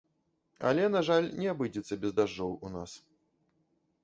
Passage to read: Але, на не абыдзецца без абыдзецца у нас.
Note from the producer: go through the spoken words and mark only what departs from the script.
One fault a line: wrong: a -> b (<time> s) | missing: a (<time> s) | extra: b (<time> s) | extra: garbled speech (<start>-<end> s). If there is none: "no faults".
extra: жаль (1.1 s)
wrong: абыдзецца -> дажджоў (2.2 s)